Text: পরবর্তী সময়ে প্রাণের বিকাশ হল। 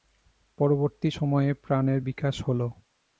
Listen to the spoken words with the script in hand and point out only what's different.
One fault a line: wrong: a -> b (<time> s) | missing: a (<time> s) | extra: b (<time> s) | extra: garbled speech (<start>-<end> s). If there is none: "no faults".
no faults